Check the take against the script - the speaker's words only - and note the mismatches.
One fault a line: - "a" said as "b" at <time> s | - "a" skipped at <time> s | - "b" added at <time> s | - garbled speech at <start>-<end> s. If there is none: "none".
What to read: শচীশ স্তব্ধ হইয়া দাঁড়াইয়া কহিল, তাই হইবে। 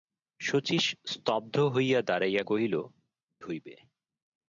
- "তাই" skipped at 2.7 s